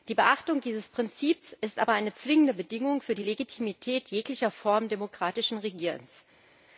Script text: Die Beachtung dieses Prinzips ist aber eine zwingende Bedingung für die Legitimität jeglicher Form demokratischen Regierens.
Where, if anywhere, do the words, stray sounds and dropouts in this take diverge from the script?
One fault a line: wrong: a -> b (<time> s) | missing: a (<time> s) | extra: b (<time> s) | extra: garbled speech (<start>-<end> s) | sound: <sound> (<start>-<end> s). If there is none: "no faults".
no faults